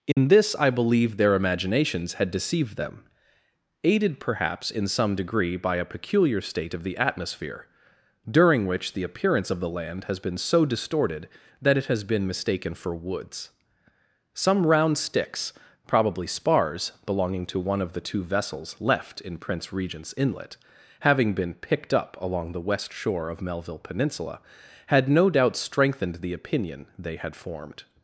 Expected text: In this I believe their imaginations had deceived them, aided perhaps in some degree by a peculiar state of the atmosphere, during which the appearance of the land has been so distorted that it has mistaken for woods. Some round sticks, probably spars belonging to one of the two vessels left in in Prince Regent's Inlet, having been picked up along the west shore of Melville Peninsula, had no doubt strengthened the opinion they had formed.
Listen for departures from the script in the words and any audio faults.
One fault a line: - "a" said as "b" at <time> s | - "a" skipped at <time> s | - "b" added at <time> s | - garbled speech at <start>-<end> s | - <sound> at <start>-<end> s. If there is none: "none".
- dropout at 0.1-0.2 s
- "been" added at 12.0 s
- "in" skipped at 19.4 s